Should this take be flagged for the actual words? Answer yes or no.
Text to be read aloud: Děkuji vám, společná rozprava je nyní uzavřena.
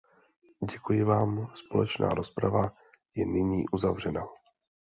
no